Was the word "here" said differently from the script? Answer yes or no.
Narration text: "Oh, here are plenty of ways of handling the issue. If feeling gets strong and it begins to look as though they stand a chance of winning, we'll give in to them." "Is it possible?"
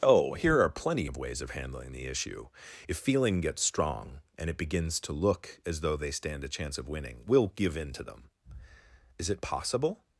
no